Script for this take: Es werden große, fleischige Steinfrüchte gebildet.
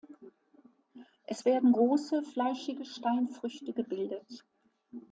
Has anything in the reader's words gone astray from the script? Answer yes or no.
no